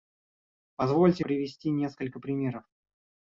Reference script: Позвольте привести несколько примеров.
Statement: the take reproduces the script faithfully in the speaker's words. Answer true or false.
true